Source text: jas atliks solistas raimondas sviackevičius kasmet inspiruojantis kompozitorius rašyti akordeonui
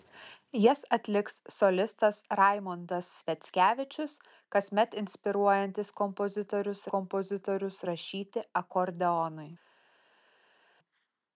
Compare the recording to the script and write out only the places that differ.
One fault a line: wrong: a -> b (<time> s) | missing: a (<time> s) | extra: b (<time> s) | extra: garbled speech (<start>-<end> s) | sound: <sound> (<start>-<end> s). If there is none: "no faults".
extra: kompozitorius (6.9 s)